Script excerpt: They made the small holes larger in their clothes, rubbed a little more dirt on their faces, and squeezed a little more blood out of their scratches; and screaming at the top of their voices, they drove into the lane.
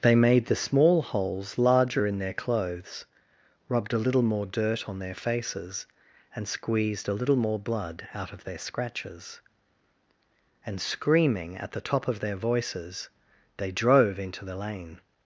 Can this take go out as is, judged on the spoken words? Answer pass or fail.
pass